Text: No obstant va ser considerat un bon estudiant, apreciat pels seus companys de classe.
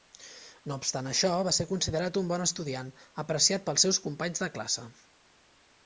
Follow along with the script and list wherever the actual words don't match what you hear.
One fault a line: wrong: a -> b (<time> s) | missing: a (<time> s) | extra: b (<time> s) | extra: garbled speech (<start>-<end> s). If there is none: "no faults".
extra: això (1.1 s)